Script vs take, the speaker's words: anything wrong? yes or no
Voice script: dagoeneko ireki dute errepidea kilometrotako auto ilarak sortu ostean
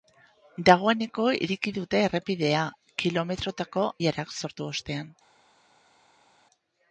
yes